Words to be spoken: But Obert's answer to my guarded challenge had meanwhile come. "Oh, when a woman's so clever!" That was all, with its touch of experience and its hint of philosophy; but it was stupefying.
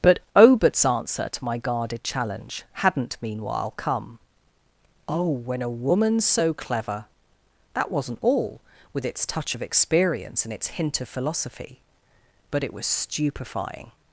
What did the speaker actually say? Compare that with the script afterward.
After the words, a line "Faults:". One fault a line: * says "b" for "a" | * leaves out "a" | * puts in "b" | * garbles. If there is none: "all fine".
But Obert's answer to my guarded challenge hadn't meanwhile come. "Oh, when a woman's so clever!" That wasn't all, with its touch of experience and its hint of philosophy; but it was stupefying.
Faults:
* says "hadn't" for "had"
* says "wasn't" for "was"